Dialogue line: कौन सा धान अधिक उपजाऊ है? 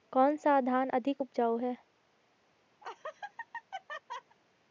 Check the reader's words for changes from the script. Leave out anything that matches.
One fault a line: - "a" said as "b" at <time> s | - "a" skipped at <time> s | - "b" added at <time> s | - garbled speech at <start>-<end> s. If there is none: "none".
none